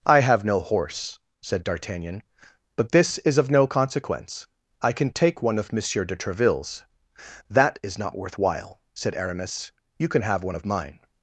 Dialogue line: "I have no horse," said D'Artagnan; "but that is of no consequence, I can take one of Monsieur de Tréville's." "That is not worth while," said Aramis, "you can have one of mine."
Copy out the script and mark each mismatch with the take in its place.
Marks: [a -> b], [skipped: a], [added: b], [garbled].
"I have no horse," said D'Artagnan; "but [that -> this] is of no consequence, I can take one of Monsieur de Tréville's." "That is not worth while," said Aramis, "you can have one of mine."